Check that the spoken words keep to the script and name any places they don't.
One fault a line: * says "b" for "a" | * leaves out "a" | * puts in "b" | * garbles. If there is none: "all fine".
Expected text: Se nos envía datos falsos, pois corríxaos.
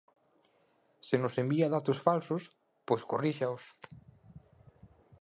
all fine